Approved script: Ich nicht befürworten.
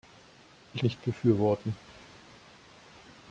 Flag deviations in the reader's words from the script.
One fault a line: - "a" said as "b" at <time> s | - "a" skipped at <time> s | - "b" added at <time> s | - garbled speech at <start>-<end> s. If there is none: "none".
none